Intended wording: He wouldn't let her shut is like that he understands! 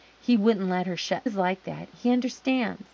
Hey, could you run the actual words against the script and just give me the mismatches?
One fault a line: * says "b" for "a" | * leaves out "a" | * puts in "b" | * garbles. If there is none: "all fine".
all fine